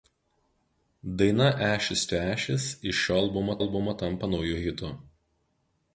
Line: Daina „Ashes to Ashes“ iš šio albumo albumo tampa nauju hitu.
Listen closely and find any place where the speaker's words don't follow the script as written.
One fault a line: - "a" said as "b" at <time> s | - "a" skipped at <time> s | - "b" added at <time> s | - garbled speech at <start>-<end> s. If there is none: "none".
none